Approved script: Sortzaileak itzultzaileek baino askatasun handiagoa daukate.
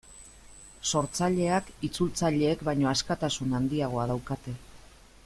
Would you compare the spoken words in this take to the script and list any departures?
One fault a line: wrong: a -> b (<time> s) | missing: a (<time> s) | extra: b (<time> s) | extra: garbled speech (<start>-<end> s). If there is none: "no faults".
no faults